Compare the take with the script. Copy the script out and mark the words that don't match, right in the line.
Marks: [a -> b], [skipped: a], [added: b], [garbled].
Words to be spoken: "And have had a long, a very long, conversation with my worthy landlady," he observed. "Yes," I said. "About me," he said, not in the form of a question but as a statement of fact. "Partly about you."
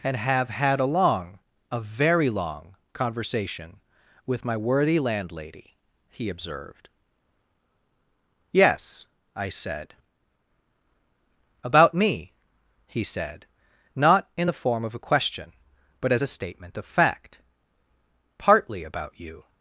"And have had a long, a very long, conversation with my worthy landlady," he observed. "Yes," I said. "About me," he said, not in the form of a question but as a statement of fact. "Partly about you."